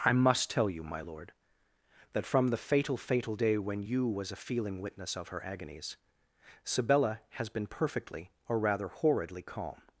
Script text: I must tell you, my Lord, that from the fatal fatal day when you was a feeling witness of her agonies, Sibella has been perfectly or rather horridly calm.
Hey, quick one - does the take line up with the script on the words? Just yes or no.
yes